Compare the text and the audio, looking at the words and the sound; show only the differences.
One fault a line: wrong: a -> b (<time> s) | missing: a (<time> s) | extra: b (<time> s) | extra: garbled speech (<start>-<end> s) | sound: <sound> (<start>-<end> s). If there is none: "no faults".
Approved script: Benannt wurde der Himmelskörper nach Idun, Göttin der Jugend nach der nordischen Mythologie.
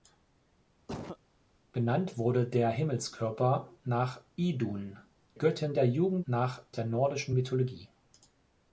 sound: cough (0.9-1.2 s)